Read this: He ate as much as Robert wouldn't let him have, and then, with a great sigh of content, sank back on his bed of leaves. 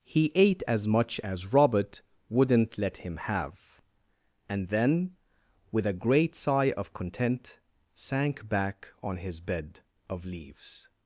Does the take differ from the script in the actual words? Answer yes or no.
no